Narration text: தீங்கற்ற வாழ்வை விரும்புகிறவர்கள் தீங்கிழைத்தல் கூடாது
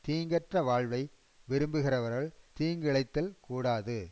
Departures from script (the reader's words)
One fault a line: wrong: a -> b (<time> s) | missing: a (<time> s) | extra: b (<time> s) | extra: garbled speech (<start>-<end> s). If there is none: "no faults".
no faults